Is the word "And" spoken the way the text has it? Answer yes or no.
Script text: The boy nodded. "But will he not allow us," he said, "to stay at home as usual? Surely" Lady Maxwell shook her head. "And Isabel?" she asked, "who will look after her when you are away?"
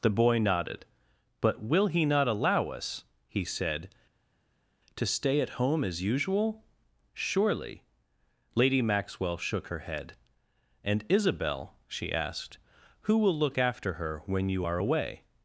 yes